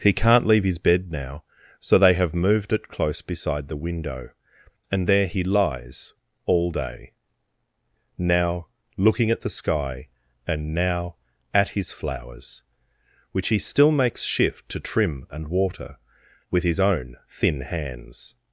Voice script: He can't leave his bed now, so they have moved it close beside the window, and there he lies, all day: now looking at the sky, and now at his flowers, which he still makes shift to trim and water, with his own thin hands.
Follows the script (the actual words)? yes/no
yes